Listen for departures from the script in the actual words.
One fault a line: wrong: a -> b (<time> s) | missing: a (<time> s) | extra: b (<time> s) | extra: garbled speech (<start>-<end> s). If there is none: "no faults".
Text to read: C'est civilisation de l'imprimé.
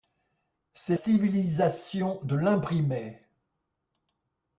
no faults